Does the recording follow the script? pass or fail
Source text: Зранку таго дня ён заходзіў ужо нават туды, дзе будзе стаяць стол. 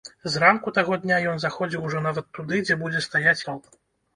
pass